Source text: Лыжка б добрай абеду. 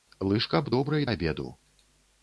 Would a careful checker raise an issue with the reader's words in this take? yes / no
no